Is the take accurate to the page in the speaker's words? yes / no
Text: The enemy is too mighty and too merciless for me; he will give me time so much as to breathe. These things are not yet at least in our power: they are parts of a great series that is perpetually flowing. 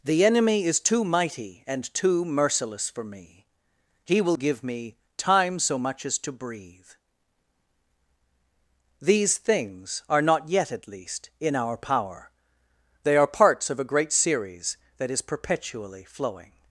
yes